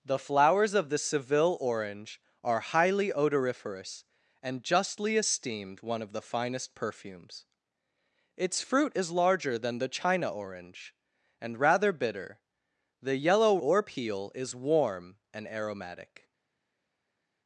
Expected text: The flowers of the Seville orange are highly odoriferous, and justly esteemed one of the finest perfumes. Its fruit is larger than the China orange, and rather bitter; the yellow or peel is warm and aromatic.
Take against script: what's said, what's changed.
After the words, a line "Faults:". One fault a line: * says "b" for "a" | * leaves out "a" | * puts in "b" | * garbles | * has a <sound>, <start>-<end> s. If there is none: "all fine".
The flowers of the Seville orange are highly odoriferous, and justly esteemed one of the finest perfumes. Its fruit is larger than the China orange, and rather bitter; the yellow or peel is warm and aromatic.
Faults:
all fine